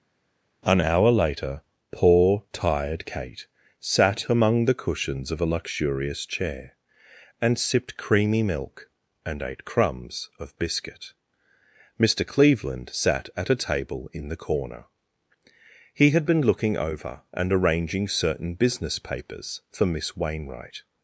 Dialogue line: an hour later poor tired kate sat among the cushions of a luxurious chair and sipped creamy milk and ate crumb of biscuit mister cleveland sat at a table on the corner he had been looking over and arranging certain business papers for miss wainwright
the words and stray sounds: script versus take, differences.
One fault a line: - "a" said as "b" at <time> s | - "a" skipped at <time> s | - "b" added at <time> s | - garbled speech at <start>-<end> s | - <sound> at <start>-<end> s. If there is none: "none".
- "crumb" said as "crumbs" at 9.6 s
- "on" said as "in" at 14.1 s